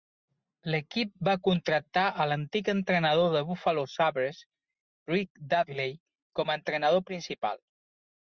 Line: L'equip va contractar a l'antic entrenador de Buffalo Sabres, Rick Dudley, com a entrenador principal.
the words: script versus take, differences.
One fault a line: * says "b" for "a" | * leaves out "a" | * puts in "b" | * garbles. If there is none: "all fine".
all fine